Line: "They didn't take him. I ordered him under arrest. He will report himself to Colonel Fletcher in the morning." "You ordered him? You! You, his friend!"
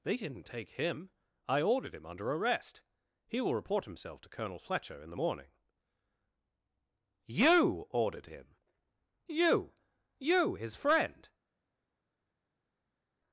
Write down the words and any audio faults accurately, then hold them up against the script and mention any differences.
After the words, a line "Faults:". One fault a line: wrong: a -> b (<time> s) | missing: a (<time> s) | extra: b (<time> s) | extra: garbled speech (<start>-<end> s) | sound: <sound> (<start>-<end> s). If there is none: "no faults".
"They didn't take him. I ordered him under arrest. He will report himself to Colonel Fletcher in the morning." "You ordered him? You! You, his friend!"
Faults:
no faults